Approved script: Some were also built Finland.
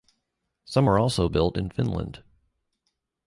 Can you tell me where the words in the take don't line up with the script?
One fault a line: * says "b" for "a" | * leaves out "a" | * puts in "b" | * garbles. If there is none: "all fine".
* puts in "in"